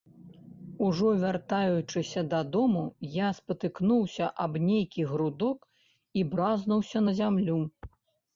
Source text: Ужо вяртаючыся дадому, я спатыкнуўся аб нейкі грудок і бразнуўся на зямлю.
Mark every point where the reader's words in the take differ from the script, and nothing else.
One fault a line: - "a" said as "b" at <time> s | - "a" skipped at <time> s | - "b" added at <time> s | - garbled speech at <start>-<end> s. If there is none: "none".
none